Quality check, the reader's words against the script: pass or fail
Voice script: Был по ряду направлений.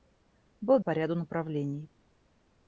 pass